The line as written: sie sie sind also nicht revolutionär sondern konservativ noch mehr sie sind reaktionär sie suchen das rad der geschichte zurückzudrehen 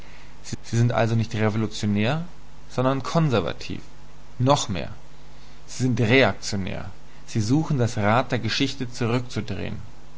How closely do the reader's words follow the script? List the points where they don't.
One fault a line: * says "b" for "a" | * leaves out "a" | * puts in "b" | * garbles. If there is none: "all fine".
all fine